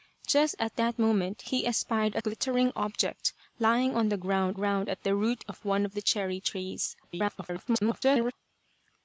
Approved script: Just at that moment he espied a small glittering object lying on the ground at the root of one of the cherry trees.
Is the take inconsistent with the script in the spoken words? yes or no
yes